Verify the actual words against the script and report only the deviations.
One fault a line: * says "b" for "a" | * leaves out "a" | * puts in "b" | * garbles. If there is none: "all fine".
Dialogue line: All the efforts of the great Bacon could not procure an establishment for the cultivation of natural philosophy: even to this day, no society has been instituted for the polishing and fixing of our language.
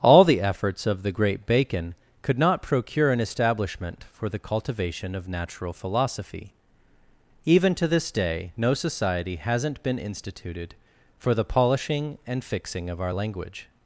* says "hasn't" for "has"